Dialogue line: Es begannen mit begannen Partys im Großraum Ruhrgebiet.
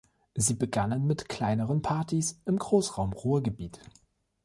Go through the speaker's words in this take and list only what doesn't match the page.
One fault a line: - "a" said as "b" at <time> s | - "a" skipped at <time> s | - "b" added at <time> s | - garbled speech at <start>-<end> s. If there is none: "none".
- "Es" said as "Sie" at 0.3 s
- "begannen" said as "kleineren" at 1.3 s